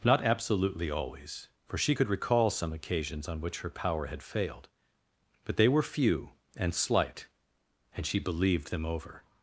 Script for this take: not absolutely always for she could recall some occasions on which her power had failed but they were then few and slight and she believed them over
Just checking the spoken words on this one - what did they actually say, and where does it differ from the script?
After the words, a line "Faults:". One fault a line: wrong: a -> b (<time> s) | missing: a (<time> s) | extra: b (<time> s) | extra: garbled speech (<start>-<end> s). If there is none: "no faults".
not absolutely always for she could recall some occasions on which her power had failed but they were few and slight and she believed them over
Faults:
missing: then (5.8 s)